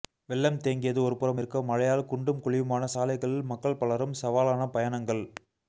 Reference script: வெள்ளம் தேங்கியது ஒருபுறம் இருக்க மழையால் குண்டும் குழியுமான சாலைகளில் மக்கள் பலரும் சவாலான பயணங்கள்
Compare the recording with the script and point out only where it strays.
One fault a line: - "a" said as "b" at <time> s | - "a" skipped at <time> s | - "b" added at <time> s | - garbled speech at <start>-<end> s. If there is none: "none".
none